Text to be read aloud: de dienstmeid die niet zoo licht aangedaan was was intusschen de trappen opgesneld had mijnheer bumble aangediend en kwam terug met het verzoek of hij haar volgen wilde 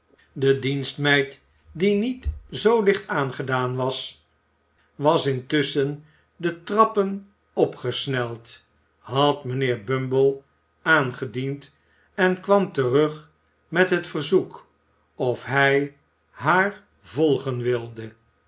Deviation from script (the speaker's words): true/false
false